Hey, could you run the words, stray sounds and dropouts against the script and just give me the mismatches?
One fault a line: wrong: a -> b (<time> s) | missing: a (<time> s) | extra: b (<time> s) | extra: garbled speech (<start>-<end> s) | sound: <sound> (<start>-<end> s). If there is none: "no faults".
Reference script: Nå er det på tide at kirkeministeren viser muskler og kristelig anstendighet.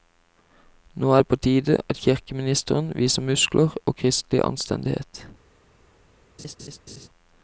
sound: laugh (6.4-7.1 s)